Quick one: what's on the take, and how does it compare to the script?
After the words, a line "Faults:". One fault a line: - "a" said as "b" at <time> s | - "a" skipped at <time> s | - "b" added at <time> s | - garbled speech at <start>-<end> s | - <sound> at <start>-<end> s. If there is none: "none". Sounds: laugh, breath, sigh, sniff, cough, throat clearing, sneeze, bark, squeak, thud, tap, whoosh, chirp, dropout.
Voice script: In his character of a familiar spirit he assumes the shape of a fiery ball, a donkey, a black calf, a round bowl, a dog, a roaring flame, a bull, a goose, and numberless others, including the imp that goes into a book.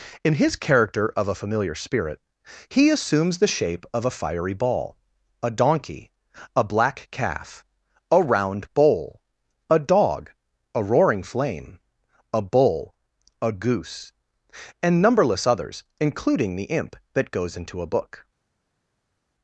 In his character of a familiar spirit he assumes the shape of a fiery ball, a donkey, a black calf, a round bowl, a dog, a roaring flame, a bull, a goose, and numberless others, including the imp that goes into a book.
Faults:
none